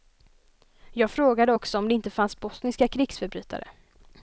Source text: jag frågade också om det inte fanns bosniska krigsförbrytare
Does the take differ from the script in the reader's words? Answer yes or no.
no